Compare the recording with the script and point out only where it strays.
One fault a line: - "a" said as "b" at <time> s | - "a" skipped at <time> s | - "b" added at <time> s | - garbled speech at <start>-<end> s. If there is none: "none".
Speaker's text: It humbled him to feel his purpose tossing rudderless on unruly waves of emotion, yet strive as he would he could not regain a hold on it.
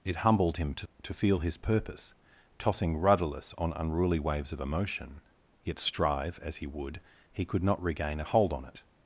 - "to" added at 1.0 s